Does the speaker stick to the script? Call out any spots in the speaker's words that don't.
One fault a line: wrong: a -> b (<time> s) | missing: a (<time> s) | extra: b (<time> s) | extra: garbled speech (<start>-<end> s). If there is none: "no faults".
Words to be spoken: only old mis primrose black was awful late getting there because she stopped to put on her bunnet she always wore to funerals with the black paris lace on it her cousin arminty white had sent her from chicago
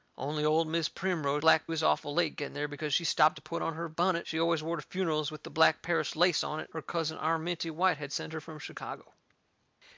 no faults